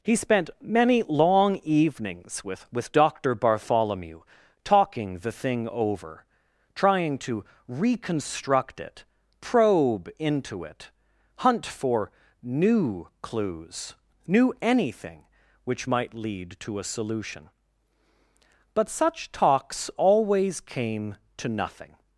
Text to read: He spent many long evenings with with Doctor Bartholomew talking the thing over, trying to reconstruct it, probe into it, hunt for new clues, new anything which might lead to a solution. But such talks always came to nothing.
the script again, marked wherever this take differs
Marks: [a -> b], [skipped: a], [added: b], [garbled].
He spent many long evenings with with Doctor Bartholomew talking the thing over, trying to reconstruct it, probe into it, hunt for new clues, new anything which might lead to a solution. But such talks always came to nothing.